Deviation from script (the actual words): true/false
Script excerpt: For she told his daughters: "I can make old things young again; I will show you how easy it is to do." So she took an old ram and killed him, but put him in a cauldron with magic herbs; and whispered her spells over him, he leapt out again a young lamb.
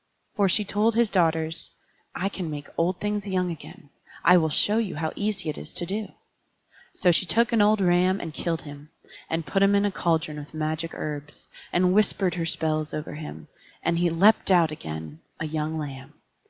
true